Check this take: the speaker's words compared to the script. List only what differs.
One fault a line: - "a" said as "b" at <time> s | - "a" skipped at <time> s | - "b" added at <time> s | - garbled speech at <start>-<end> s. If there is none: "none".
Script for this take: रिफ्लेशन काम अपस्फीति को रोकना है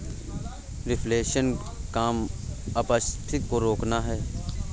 none